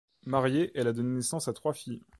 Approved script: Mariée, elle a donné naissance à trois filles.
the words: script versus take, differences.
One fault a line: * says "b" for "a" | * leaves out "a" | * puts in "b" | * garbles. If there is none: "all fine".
all fine